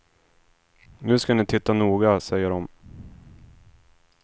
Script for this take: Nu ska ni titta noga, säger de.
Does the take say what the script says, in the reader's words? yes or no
yes